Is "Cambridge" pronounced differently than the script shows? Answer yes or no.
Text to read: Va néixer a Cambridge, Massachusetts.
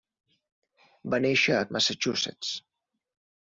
yes